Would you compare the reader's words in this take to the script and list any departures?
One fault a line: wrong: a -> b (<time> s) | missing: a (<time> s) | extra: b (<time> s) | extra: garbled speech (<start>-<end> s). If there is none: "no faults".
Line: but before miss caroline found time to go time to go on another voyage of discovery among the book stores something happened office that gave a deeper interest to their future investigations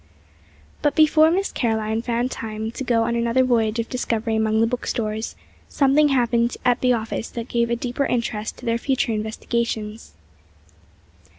missing: time to go (3.0 s)
extra: at the (6.6 s)